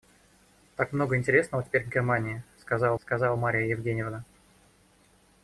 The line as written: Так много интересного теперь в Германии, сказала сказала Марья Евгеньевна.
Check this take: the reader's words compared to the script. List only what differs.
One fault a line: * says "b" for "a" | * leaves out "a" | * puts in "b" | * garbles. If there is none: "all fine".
all fine